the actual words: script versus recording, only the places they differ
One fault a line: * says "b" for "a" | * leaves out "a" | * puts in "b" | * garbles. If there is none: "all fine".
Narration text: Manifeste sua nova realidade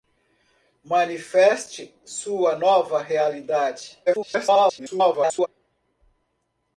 * garbles